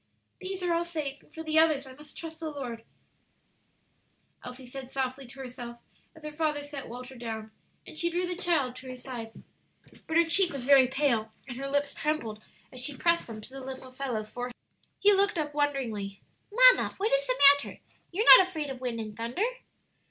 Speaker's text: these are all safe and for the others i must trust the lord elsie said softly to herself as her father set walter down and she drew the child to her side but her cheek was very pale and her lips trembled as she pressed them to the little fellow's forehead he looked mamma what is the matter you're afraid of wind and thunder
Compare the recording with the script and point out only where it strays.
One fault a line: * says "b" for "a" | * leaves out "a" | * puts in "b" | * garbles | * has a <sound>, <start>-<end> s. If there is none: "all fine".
* puts in "up wonderingly"
* puts in "not"